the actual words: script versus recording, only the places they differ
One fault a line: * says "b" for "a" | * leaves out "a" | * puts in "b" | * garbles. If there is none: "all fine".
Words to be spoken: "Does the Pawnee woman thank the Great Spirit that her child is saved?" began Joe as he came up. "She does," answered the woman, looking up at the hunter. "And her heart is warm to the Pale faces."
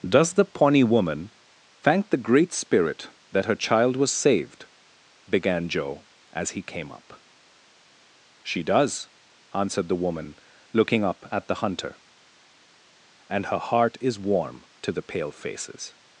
* says "was" for "is"